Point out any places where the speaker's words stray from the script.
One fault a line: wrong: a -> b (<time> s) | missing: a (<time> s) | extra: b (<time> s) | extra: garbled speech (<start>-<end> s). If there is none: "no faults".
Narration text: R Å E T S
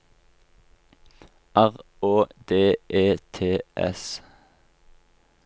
extra: D (2.5 s)